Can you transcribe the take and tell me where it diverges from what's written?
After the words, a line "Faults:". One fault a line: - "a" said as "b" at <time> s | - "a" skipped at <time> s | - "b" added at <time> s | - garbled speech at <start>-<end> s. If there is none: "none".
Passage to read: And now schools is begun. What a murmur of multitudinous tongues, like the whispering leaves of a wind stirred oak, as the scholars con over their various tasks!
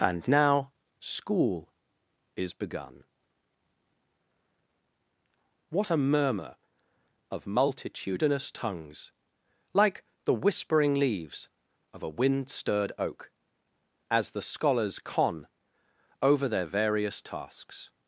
And now school is begun. What a murmur of multitudinous tongues, like the whispering leaves of a wind stirred oak, as the scholars con over their various tasks!
Faults:
- "schools" said as "school" at 1.0 s